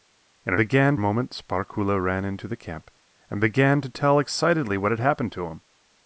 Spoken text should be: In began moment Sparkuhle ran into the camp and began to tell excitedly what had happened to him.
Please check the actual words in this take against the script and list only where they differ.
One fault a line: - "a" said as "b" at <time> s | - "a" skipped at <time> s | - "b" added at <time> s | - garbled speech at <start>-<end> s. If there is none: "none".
none